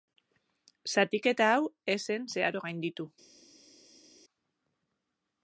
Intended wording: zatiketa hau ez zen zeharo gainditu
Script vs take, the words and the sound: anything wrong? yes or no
no